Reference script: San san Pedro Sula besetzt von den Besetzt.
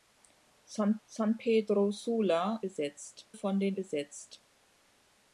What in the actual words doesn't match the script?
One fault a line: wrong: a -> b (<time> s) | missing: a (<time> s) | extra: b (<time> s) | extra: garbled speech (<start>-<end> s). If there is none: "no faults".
no faults